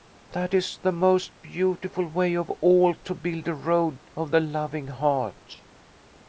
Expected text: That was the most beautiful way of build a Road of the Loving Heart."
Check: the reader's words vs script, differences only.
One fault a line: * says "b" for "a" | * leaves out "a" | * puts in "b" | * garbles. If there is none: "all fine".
* says "is" for "was"
* puts in "all to"